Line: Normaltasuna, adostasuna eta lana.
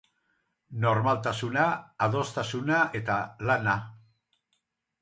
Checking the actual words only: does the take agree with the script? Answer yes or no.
yes